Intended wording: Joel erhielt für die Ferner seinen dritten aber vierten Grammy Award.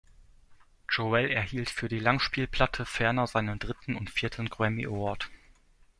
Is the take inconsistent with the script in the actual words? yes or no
yes